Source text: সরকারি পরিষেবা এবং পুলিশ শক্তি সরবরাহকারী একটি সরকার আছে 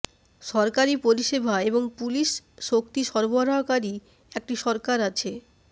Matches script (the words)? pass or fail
pass